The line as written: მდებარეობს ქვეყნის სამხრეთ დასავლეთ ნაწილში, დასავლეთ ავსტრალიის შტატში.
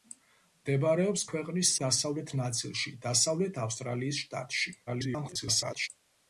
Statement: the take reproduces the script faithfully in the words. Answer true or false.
false